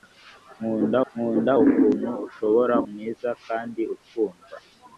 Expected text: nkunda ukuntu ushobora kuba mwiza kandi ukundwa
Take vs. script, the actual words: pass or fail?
fail